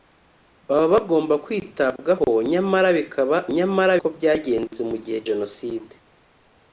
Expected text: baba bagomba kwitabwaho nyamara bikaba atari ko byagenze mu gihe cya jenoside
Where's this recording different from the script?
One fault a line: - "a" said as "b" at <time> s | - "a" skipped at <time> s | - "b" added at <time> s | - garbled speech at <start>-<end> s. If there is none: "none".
- "atari" said as "nyamara" at 3.6 s
- "cya" skipped at 5.2 s